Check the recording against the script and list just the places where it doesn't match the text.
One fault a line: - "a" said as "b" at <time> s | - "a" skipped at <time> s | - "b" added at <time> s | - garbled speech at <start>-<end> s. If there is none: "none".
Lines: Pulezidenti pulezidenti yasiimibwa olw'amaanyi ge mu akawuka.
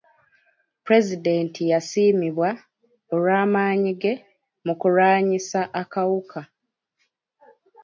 - "pulezidenti" skipped at 1.6 s
- "kulwanyisa" added at 4.8 s